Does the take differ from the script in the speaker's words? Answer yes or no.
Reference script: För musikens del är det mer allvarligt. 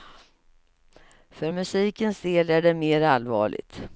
no